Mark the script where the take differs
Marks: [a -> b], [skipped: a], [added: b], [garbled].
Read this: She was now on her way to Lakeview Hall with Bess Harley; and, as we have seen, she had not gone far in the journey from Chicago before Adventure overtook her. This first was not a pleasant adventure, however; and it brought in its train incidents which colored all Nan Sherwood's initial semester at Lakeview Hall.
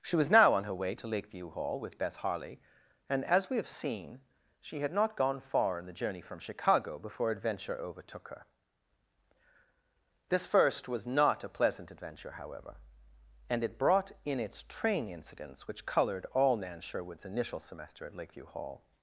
She was now on her way to Lakeview Hall with Bess Harley; and, as we have seen, she had not gone far in the journey from Chicago before Adventure overtook her. This first was not a pleasant adventure, however; and it brought in its train incidents which colored all Nan Sherwood's initial semester at Lakeview Hall.